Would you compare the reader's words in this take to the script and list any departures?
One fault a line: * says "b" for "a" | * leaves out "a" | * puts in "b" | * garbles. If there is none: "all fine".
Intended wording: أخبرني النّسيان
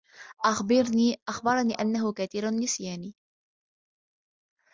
* puts in "أنّه كثير"